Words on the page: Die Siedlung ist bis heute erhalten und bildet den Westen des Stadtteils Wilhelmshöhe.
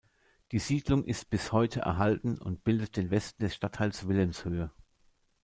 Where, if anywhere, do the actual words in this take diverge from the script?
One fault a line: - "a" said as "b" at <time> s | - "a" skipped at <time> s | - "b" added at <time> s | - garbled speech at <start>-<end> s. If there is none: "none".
none